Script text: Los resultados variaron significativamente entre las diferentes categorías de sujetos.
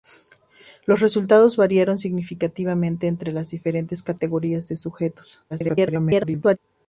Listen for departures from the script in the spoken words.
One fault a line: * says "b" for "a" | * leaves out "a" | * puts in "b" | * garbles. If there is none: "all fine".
* garbles